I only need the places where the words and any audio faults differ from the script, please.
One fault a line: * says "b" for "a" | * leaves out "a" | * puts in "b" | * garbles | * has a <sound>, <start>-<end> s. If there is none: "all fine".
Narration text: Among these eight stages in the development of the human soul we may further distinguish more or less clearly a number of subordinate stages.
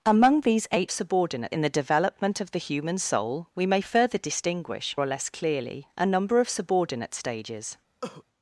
* says "subordinate" for "stages"
* leaves out "more"
* has a cough, 8.0-8.2 s